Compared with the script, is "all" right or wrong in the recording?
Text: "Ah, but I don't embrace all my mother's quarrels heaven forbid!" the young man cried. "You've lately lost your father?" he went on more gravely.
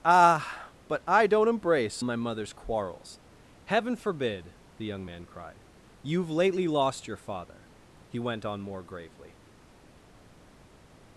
wrong